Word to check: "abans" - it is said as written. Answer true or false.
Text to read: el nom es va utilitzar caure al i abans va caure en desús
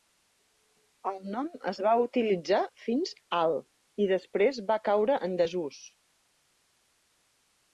false